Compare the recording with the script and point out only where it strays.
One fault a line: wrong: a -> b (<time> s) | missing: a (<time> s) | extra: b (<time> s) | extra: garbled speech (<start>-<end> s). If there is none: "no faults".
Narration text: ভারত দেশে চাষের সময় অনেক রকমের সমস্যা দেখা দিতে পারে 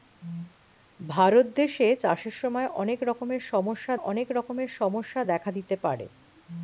extra: অনেক রকমের সমস্যা (4.0 s)